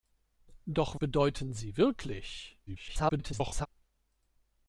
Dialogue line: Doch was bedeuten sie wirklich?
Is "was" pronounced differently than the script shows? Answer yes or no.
yes